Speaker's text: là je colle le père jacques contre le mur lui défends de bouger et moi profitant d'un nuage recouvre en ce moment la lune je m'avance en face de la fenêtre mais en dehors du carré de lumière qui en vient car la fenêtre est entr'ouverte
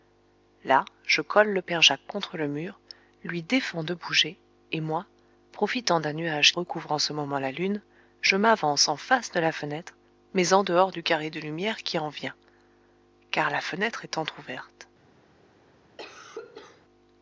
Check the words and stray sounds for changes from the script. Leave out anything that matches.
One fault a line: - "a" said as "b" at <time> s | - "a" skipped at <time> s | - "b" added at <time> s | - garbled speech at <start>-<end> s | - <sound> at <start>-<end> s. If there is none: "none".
- cough at 16.0-16.8 s